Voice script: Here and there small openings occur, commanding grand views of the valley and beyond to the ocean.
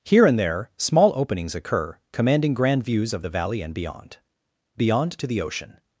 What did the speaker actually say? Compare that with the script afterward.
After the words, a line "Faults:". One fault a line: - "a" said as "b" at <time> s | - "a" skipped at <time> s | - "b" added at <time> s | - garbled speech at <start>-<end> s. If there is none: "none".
Here and there small openings occur, commanding grand views of the valley and beyond beyond to the ocean.
Faults:
- "beyond" added at 4.8 s